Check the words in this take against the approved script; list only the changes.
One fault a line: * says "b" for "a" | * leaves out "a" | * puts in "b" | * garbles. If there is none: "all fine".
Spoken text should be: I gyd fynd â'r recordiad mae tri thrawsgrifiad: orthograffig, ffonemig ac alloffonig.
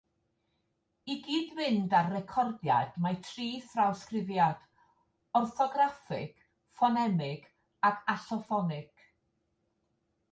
all fine